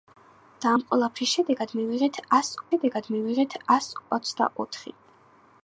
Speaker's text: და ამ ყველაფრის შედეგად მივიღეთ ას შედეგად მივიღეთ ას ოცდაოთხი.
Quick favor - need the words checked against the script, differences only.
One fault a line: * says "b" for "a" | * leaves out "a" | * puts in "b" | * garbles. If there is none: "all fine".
all fine